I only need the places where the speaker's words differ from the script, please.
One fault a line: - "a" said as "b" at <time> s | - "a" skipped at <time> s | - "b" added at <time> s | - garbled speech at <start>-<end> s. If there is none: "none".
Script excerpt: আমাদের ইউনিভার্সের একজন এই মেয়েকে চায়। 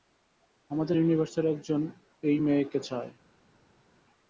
none